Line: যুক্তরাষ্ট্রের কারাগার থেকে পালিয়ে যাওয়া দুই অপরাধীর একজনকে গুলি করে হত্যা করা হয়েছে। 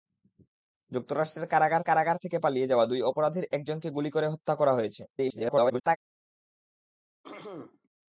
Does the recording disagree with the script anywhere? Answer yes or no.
yes